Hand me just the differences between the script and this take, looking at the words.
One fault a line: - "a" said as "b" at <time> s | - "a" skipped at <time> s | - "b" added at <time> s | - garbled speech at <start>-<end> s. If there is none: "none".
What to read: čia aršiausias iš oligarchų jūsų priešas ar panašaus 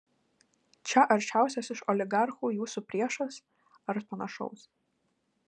none